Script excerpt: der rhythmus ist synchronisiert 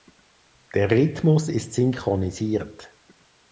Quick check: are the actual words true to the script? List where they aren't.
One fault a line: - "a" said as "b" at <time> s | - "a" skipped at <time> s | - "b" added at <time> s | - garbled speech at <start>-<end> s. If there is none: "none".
none